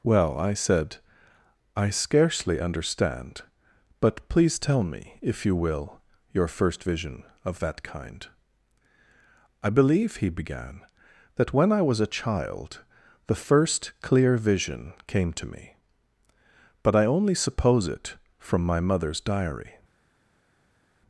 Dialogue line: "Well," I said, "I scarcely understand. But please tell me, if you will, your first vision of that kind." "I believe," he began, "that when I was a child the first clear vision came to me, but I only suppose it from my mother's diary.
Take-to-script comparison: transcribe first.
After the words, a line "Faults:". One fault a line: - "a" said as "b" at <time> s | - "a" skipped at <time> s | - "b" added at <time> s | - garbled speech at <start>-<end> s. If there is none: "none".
"Well," I said, "I scarcely understand. But please tell me, if you will, your first vision of that kind." "I believe," he began, "that when I was a child the first clear vision came to me, but I only suppose it from my mother's diary.
Faults:
none